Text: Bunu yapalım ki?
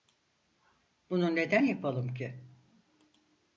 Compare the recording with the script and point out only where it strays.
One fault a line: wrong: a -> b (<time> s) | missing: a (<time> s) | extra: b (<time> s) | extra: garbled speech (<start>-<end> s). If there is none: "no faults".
extra: neden (1.4 s)